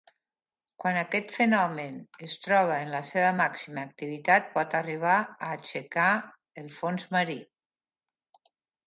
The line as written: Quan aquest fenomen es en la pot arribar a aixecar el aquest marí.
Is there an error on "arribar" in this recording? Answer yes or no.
no